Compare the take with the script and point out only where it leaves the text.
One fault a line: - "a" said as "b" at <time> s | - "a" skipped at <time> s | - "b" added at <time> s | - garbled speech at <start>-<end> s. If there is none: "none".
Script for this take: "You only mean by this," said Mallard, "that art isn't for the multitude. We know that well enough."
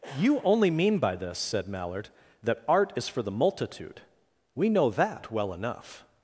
- "isn't" said as "is" at 3.0 s